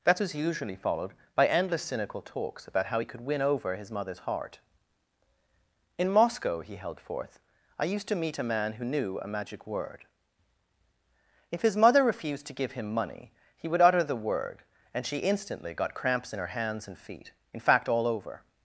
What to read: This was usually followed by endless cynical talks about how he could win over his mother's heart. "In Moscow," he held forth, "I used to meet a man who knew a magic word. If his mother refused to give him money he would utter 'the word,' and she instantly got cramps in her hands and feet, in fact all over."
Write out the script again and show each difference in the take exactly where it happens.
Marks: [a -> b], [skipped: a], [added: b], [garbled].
[This -> That] was usually followed by endless cynical talks about how he could win over his mother's heart. "In Moscow," he held forth, "I used to meet a man who knew a magic word. If his mother refused to give him money he would utter 'the word,' and she instantly got cramps in her hands and feet, in fact all over."